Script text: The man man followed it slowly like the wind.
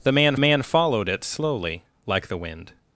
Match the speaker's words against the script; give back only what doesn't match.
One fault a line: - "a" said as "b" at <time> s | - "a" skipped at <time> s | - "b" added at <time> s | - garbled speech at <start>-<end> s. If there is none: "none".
none